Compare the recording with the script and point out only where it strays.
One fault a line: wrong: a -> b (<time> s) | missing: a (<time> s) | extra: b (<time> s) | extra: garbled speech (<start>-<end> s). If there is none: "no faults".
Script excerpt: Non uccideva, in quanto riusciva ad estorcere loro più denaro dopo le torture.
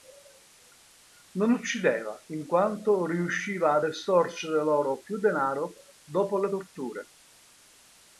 no faults